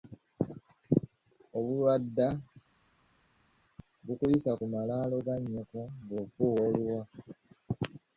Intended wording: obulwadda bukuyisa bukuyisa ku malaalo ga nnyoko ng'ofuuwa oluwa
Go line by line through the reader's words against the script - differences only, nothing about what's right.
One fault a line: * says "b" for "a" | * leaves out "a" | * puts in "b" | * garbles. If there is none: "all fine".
* leaves out "bukuyisa"